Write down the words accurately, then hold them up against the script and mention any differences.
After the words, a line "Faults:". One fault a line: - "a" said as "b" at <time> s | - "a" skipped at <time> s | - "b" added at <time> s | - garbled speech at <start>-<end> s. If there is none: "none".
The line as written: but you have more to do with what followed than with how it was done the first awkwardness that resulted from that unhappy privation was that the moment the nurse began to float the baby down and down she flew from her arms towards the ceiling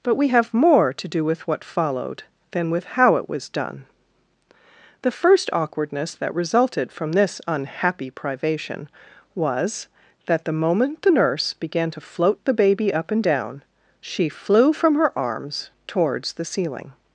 but we have more to do with what followed than with how it was done the first awkwardness that resulted from this unhappy privation was that the moment the nurse began to float the baby up and down she flew from her arms towards the ceiling
Faults:
- "you" said as "we" at 0.1 s
- "that" said as "this" at 7.1 s
- "down" said as "up" at 12.9 s